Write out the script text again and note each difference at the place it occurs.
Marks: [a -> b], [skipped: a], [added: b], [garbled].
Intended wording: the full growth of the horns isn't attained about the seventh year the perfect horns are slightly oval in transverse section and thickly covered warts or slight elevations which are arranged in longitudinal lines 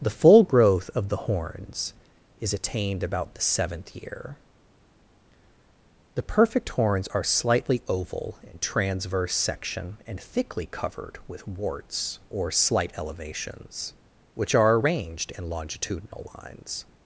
the full growth of the horns [isn't -> is] attained about the seventh year the perfect horns are slightly oval in transverse section and thickly covered [added: with] warts or slight elevations which are arranged in longitudinal lines